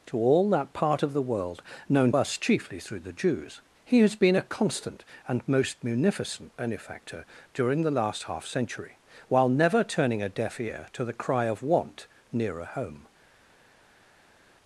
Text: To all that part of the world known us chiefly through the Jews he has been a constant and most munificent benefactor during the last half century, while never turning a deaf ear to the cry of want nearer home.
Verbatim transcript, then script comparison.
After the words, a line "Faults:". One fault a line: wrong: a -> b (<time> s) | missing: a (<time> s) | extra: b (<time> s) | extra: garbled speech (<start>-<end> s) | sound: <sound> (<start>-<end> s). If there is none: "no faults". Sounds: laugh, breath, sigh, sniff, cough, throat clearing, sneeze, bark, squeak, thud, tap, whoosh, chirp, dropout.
To all that part of the world known us chiefly through the Jews he has been a constant and most munificent benefactor during the last half century, while never turning a deaf ear to the cry of want nearer home.
Faults:
no faults